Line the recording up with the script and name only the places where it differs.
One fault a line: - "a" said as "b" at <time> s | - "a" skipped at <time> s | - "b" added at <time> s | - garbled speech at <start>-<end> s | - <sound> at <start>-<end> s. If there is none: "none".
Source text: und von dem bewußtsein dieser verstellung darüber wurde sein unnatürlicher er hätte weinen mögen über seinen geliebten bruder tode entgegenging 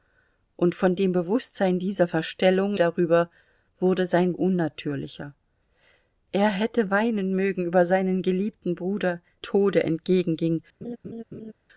- laugh at 10.8-11.5 s